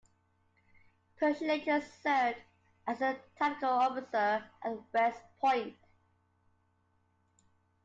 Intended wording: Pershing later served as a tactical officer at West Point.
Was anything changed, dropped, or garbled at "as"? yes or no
no